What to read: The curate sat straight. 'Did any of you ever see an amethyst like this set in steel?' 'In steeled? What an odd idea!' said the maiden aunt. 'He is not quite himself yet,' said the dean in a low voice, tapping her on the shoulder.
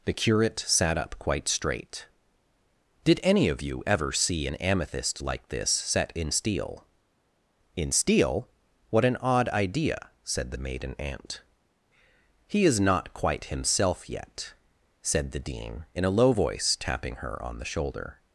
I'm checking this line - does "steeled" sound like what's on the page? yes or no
no